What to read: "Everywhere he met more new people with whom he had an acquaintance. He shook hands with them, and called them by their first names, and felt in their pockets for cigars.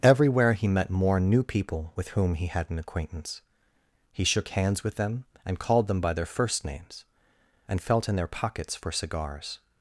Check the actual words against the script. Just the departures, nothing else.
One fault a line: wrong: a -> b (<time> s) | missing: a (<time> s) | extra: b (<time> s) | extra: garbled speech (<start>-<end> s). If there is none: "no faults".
no faults